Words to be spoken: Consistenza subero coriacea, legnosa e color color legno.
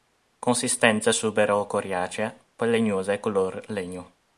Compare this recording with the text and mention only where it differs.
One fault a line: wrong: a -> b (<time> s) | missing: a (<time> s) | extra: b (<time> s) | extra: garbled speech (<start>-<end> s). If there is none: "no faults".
extra: poi (2.5 s)
missing: color (3.6 s)